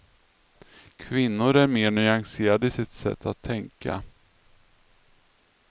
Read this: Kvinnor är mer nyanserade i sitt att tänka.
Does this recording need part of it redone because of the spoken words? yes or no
yes